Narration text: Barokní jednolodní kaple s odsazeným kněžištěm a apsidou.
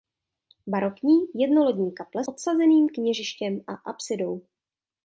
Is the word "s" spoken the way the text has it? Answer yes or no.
no